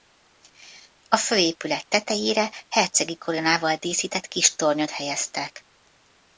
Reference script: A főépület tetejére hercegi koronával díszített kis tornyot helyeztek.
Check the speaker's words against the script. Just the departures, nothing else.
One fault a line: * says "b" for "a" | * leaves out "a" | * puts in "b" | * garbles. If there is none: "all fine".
all fine